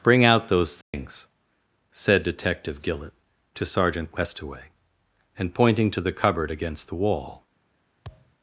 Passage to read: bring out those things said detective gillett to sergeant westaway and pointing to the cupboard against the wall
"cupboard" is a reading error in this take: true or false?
false